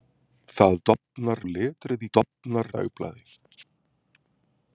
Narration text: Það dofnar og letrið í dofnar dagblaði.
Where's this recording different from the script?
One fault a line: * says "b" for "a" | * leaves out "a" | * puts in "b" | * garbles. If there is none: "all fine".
all fine